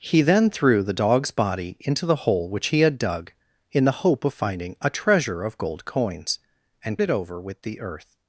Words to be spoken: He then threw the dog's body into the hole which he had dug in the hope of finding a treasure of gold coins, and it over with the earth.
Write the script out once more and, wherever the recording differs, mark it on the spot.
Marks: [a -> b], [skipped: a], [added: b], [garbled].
He then threw the dog's body into the hole which he had dug in the hope of finding a treasure of gold coins, and it over with the earth.